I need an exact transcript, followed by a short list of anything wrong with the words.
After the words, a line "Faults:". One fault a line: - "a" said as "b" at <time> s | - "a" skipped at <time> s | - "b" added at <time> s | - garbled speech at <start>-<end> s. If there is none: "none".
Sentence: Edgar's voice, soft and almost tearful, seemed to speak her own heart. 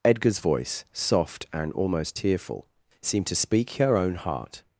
Edgar's voice, soft and almost tearful, seemed to speak her own heart.
Faults:
none